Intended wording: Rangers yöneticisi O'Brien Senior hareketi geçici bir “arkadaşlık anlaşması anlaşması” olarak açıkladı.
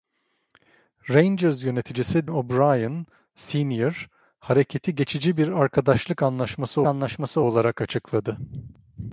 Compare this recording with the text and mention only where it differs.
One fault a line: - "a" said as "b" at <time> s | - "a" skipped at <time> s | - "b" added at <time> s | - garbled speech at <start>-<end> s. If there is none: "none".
none